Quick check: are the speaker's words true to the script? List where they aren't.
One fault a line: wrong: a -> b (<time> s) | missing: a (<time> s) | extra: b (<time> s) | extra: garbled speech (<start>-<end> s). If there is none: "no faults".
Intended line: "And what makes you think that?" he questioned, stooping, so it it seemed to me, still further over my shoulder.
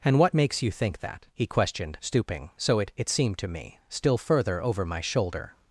no faults